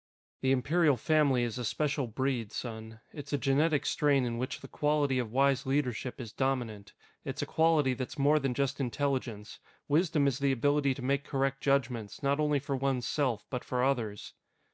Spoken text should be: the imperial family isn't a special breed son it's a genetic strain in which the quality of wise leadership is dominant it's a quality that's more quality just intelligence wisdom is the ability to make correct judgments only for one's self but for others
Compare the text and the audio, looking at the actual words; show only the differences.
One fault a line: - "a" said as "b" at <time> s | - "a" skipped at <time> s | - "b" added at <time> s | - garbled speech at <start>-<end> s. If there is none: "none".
- "isn't" said as "is" at 1.4 s
- "quality" said as "than" at 8.4 s
- "not" added at 12.2 s